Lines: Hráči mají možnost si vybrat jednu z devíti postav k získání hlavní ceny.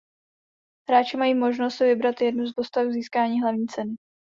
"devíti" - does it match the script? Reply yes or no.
no